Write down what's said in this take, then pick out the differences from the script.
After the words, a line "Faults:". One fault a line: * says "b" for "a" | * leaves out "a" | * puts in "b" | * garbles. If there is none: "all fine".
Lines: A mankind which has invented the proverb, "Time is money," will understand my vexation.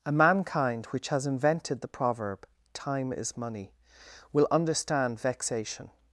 A mankind which has invented the proverb, "Time is money," will understand vexation.
Faults:
* leaves out "my"